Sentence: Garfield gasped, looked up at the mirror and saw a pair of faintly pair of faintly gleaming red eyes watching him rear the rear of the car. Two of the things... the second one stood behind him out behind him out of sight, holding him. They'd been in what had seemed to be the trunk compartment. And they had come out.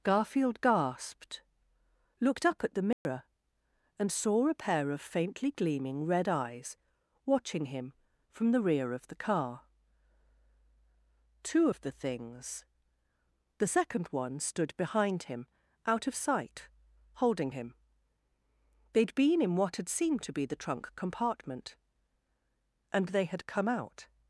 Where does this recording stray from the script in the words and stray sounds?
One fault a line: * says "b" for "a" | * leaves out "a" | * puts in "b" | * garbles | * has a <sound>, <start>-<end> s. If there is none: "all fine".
* has a dropout, 2.9-3.1 s
* leaves out "pair of faintly"
* says "from" for "rear"
* leaves out "behind him out"